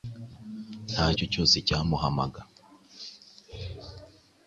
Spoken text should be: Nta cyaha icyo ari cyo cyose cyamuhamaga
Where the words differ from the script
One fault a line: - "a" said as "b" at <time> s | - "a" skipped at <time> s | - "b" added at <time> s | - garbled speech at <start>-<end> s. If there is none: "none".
- "cyaha icyo ari" skipped at 1.1 s